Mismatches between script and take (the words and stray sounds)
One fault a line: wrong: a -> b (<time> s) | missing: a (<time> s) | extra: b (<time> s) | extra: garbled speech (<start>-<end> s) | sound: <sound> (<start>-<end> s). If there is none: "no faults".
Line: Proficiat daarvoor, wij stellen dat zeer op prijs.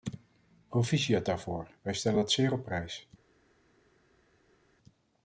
no faults